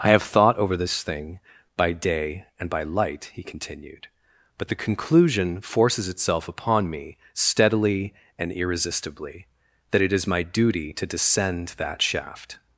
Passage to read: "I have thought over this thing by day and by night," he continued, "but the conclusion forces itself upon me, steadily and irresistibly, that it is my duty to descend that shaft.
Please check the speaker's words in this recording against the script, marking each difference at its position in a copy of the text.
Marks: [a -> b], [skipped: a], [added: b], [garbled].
"I have thought over this thing by day and by [night," -> light] he continued, "but the conclusion forces itself upon me, steadily and irresistibly, that it is my duty to descend that shaft.